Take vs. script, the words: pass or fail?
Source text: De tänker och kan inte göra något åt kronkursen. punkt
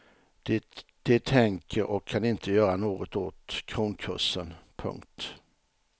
pass